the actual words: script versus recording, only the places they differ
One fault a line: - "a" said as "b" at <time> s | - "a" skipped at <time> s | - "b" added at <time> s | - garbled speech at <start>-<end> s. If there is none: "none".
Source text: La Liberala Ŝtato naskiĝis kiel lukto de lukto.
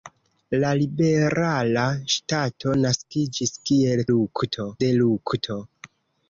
none